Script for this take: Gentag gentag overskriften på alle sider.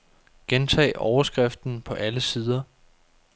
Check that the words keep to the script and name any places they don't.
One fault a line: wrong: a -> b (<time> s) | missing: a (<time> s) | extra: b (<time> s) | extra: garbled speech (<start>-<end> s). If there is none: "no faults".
missing: gentag (0.9 s)